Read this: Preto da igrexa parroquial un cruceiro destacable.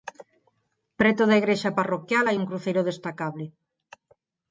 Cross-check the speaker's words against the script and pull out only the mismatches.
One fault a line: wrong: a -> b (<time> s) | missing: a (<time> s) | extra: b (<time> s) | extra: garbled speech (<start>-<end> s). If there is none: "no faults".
extra: hai (2.3 s)